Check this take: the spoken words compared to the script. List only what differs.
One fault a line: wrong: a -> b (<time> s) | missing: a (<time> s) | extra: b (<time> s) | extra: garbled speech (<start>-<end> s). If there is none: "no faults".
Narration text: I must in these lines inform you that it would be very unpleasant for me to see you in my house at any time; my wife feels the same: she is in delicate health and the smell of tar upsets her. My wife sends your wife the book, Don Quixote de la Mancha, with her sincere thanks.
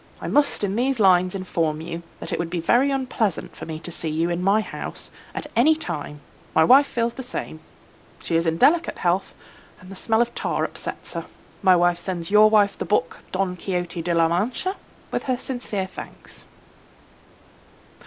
no faults